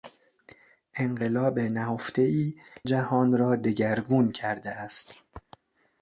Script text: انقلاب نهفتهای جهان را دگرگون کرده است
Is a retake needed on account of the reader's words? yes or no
no